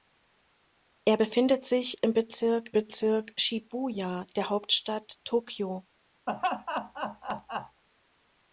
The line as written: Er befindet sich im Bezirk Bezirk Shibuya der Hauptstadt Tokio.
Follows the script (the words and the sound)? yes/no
no